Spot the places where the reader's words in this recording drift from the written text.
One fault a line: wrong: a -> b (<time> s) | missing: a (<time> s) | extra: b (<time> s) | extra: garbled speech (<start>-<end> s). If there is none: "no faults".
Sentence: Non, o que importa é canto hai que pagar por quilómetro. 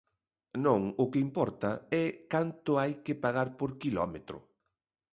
no faults